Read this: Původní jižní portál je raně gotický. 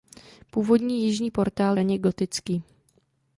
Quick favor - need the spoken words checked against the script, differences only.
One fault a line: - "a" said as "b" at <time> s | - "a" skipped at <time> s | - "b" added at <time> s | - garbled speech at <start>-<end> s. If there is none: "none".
- "je" skipped at 1.8 s